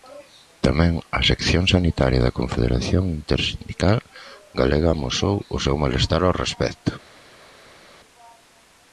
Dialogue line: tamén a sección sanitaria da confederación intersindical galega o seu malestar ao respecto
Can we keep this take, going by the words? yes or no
no